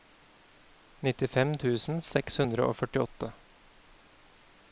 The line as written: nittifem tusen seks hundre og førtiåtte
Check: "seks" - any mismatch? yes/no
no